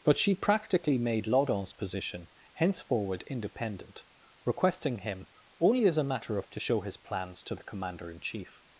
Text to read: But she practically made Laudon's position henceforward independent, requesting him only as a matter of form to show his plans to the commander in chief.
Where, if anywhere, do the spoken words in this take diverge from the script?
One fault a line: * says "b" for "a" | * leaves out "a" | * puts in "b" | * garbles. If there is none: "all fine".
* leaves out "form"